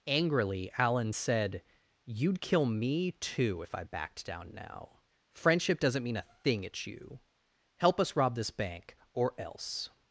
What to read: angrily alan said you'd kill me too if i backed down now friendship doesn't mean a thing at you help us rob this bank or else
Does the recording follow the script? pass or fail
pass